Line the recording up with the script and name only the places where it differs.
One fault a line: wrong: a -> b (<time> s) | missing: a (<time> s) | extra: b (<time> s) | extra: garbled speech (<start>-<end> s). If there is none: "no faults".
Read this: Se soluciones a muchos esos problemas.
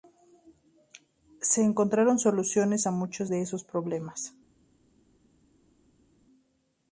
extra: encontraron (1.6 s)
extra: de (3.3 s)